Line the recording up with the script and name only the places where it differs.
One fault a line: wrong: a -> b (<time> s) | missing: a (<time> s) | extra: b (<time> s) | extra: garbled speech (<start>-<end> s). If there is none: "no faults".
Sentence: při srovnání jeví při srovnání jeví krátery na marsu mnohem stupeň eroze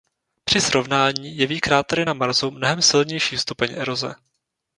missing: při srovnání jeví (1.6 s)
extra: silnější (2.8 s)